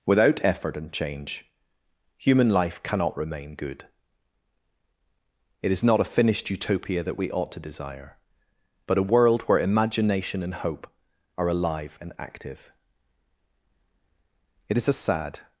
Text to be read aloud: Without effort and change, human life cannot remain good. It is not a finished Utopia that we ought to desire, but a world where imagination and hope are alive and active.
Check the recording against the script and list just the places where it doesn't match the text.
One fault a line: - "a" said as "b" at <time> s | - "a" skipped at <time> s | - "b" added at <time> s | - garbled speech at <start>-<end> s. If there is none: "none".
- "It is a sad" added at 14.7 s